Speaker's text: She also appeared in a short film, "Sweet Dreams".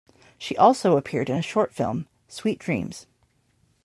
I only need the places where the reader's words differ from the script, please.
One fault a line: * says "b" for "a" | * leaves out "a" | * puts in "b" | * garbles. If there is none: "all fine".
all fine